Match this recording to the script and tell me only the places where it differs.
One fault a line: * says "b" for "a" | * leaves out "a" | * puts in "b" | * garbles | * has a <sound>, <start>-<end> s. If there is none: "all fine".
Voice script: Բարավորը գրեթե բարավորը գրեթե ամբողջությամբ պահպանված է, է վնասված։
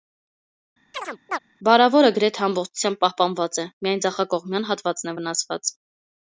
* has a chirp, 0.9-1.4 s
* leaves out "բարավորը գրեթե"
* puts in "միայն ձախակողմյան հատվածն"